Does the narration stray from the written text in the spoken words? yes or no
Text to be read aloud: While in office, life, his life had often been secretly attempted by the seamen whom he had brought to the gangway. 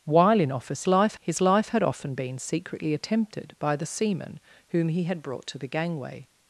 no